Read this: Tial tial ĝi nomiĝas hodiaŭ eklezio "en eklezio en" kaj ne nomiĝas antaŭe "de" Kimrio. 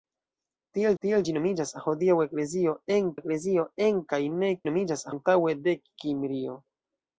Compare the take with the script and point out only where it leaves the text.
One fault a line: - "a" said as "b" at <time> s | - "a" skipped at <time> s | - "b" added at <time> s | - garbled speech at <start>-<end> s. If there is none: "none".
none